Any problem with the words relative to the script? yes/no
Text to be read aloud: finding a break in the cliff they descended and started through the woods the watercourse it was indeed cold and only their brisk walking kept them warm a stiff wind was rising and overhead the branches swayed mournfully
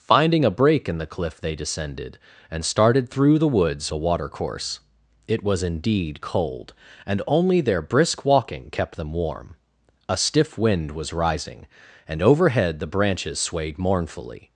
no